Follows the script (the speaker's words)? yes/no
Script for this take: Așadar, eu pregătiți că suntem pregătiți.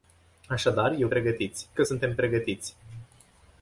yes